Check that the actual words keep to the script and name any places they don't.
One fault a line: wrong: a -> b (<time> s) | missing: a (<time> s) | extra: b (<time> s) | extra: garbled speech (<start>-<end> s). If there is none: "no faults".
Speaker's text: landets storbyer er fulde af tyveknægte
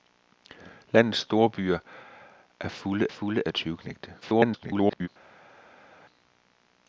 extra: fulde (3.1 s)
extra: garbled speech (4.2-5.1 s)